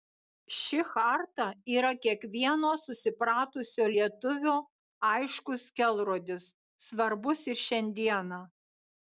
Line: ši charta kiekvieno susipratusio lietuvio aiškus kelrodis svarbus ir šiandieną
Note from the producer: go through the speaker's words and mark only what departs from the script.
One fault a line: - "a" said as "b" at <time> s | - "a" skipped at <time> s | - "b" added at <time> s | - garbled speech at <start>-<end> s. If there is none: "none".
- "yra" added at 1.7 s